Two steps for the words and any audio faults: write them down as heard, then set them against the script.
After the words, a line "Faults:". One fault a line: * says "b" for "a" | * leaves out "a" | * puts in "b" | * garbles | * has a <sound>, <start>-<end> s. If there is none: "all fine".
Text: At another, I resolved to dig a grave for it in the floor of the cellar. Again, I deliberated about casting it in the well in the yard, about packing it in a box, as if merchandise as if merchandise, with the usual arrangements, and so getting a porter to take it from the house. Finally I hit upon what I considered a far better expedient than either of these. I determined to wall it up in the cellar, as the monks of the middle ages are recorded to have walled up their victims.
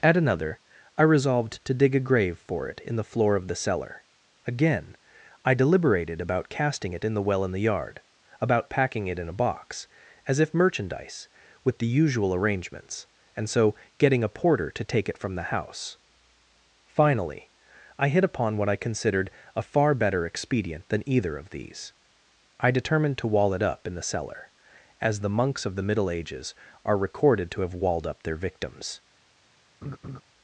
At another, I resolved to dig a grave for it in the floor of the cellar. Again, I deliberated about casting it in the well in the yard, about packing it in a box, as if merchandise, with the usual arrangements, and so getting a porter to take it from the house. Finally I hit upon what I considered a far better expedient than either of these. I determined to wall it up in the cellar, as the monks of the middle ages are recorded to have walled up their victims.
Faults:
* leaves out "as if merchandise"
* has a laugh, 29.8-30.2 s